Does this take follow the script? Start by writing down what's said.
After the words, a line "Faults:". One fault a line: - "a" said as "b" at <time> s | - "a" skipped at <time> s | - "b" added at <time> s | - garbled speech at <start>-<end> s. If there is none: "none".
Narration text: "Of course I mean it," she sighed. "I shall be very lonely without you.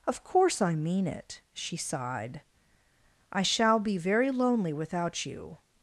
"Of course I mean it," she sighed. "I shall be very lonely without you.
Faults:
none